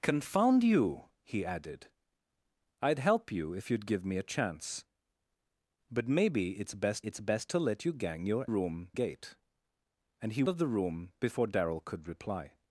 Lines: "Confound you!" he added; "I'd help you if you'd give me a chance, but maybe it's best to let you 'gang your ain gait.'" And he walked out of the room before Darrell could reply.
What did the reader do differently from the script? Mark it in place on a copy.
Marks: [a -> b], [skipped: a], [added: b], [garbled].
"Confound you!" he added; "I'd help you if you'd give me a chance, but maybe it's best [added: it's best] to let you 'gang your [ain -> room] gait.'" And he [skipped: walked out] of the room before Darrell could reply.